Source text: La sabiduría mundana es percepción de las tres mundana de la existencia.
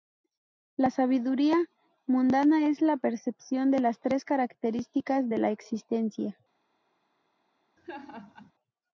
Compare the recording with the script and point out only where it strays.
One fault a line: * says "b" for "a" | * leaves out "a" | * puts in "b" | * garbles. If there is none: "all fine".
* puts in "la"
* says "características" for "mundana"